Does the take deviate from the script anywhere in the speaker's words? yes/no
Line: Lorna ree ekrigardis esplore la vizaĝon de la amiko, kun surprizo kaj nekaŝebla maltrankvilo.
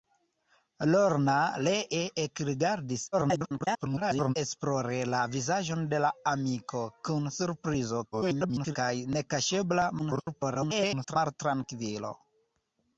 yes